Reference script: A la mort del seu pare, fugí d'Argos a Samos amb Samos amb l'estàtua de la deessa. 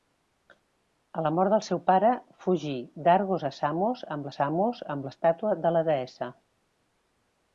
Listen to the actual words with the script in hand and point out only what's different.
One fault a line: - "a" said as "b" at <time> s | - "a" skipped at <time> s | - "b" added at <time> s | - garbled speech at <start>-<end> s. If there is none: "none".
none